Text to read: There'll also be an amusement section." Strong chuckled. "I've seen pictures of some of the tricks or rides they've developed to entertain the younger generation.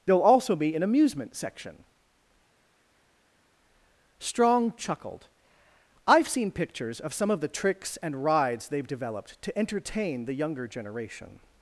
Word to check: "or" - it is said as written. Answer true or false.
false